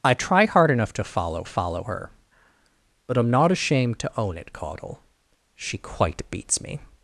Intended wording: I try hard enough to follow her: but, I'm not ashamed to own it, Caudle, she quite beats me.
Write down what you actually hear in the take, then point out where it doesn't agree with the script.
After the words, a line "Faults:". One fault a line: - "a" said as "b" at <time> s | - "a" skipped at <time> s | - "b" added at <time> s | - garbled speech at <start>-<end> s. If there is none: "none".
I try hard enough to follow follow her: but, I'm not ashamed to own it, Caudle, she quite beats me.
Faults:
- "follow" added at 1.4 s